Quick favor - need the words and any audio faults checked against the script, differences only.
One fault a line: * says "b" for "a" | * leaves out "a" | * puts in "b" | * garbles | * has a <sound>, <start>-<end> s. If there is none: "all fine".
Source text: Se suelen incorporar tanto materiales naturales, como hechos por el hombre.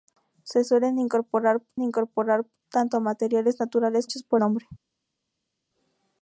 * puts in "incorporar"
* leaves out "como"
* leaves out "el"